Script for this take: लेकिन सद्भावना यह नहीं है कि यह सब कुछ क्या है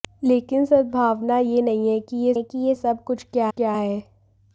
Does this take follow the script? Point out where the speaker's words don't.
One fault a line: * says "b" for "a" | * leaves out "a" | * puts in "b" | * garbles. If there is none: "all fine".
* puts in "है कि यह"
* puts in "क्या"